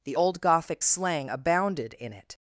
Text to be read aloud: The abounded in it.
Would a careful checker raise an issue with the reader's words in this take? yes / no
yes